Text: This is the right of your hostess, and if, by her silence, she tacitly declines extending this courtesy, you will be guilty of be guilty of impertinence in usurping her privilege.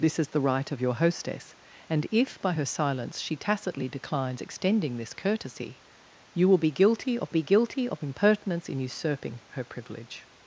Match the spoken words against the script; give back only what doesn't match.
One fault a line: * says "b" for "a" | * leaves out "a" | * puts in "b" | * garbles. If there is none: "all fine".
all fine